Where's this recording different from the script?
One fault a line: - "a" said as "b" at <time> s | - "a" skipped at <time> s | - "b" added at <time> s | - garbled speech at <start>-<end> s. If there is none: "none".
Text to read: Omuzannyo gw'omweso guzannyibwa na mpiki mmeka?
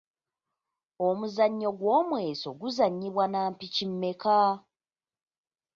none